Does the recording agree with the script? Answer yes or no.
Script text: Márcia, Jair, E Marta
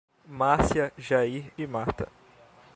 yes